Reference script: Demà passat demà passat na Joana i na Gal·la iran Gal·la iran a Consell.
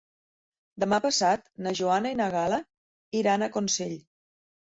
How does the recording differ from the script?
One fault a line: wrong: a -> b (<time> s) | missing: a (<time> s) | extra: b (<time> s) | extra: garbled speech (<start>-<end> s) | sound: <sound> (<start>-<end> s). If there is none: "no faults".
missing: demà passat (1.5 s)
missing: Gal·la iran (3.5 s)